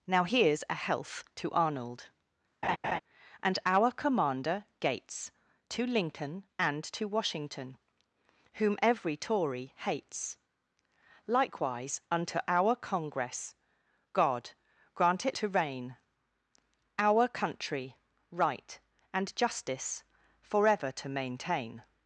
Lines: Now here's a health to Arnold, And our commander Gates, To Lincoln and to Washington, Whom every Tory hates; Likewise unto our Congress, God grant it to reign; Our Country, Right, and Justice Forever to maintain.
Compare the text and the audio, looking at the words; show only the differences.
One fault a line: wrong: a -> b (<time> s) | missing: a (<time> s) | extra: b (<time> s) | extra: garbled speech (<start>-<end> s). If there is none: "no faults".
no faults